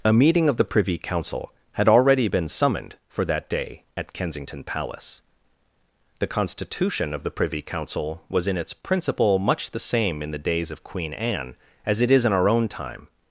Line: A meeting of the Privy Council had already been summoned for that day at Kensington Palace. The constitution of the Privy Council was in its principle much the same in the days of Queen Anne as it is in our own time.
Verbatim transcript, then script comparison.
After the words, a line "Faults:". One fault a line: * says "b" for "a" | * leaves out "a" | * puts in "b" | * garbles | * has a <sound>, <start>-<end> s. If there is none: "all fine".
A meeting of the Privy Council had already been summoned for that day at Kensington Palace. The constitution of the Privy Council was in its principle much the same in the days of Queen Anne as it is in our own time.
Faults:
all fine